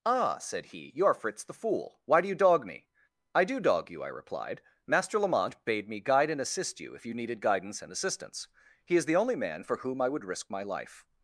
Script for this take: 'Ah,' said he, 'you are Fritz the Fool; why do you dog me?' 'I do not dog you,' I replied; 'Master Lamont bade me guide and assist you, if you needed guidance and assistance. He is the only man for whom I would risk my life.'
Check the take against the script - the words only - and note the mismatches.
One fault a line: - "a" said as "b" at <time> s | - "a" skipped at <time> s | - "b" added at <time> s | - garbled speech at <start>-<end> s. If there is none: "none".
- "not" skipped at 3.6 s